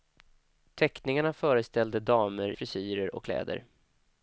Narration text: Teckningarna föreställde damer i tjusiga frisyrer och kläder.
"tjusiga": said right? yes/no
no